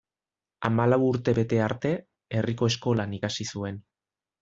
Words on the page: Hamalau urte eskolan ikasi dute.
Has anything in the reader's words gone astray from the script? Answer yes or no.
yes